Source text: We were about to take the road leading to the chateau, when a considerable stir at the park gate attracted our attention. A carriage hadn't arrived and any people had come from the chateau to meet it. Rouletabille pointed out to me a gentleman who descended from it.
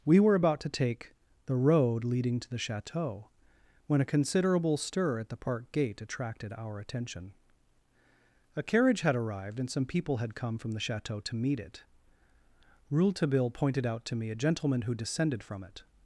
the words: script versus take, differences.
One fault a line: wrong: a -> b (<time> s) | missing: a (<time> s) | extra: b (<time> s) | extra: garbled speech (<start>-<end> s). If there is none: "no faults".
wrong: hadn't -> had (9.0 s)
wrong: any -> some (9.7 s)